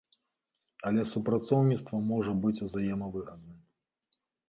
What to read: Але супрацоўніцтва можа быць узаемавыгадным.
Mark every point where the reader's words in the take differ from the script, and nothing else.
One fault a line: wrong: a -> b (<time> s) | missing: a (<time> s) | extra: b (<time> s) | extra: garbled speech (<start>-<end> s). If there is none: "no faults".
no faults